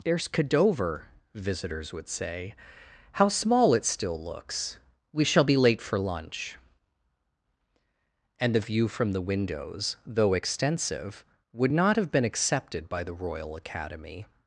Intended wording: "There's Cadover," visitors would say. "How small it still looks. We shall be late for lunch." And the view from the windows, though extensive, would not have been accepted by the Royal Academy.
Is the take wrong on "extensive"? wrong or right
right